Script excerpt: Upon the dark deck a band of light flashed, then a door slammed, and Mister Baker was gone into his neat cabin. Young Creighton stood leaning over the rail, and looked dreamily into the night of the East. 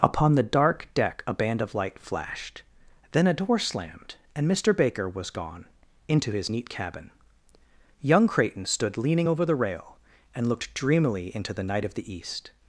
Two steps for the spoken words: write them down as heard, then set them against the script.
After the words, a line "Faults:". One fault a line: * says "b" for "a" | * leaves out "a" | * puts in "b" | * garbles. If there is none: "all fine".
Upon the dark deck a band of light flashed, then a door slammed, and Mister Baker was gone into his neat cabin. Young Creighton stood leaning over the rail, and looked dreamily into the night of the East.
Faults:
all fine